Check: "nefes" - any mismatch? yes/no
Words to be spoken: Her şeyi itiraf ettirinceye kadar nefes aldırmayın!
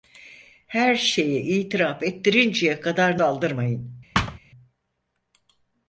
yes